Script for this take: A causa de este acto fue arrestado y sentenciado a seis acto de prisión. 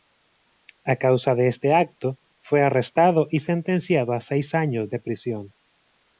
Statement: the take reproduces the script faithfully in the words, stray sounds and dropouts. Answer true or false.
false